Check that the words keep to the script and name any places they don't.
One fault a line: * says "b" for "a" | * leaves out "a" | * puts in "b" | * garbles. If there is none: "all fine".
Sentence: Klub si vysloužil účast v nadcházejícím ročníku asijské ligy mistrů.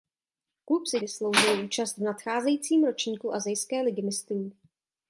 all fine